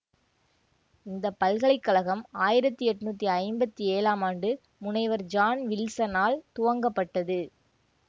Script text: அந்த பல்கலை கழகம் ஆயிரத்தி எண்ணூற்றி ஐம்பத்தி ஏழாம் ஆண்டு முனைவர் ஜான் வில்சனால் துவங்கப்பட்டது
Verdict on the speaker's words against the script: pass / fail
fail